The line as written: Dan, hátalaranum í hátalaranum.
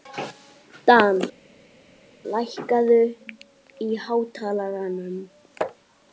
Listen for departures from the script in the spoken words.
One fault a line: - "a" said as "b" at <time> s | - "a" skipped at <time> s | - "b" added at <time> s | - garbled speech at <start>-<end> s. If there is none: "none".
- "hátalaranum" said as "lækkaðu" at 2.4 s